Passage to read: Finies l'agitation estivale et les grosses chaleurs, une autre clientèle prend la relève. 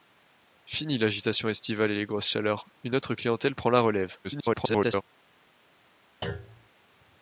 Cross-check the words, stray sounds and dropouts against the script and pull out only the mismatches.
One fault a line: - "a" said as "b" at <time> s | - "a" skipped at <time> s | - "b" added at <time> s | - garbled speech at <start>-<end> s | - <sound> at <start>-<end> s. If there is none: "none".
- garbled speech at 4.2-5.0 s
- thud at 6.2-6.7 s